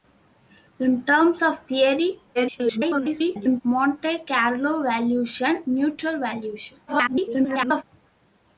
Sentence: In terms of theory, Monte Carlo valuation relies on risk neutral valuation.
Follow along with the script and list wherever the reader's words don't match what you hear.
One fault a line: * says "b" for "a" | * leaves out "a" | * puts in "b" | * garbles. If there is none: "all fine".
* garbles
* leaves out "relies on risk"
* garbles